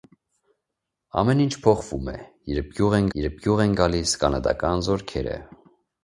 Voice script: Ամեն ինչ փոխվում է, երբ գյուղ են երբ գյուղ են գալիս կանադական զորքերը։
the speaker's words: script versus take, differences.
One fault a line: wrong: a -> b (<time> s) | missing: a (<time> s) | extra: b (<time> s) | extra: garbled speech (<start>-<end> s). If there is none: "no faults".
no faults